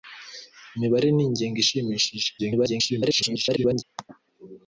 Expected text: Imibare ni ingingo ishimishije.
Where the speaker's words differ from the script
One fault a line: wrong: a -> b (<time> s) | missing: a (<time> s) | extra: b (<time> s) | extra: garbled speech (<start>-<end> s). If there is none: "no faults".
extra: garbled speech (2.4-3.8 s)